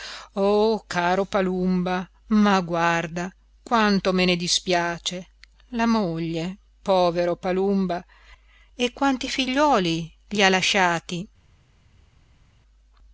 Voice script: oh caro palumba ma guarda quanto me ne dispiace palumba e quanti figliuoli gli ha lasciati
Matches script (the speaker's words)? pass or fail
fail